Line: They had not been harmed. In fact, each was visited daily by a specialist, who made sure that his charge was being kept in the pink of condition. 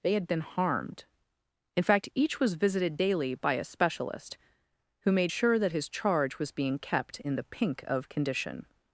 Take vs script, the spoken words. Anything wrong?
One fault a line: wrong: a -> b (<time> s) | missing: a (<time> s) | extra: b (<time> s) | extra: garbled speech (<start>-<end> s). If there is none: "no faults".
missing: not (0.3 s)